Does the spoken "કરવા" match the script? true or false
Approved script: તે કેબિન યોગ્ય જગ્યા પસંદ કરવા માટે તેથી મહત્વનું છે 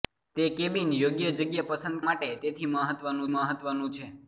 false